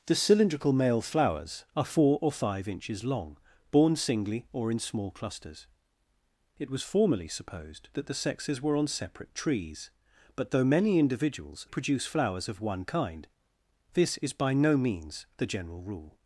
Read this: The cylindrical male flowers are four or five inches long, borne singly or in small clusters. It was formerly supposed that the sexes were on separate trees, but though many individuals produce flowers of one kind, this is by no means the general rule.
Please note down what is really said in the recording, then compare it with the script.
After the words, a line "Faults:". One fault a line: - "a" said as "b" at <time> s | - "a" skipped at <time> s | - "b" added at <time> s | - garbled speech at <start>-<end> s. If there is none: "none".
The cylindrical male flowers are four or five inches long, borne singly or in small clusters. It was formerly supposed that the sexes were on separate trees, but though many individuals produce flowers of one kind, this is by no means the general rule.
Faults:
none